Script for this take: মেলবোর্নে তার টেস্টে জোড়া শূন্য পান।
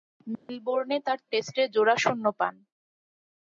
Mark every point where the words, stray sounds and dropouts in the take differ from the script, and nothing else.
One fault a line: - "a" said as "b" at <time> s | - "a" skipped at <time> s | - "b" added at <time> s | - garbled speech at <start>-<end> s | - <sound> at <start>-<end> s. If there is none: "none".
- dropout at 0.3-0.5 s